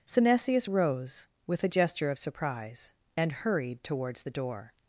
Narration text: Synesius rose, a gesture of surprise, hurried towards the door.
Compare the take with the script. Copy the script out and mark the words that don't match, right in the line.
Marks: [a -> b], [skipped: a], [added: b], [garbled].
Synesius rose, [added: with] a gesture of surprise, [added: and] hurried towards the door.